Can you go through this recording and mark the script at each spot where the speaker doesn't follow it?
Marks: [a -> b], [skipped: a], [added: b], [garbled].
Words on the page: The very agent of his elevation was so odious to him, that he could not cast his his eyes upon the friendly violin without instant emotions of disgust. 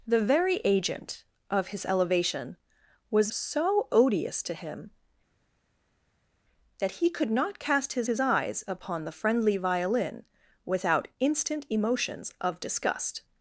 The very agent of his elevation was so odious to him, that he could not cast his his eyes upon the friendly violin without instant emotions of disgust.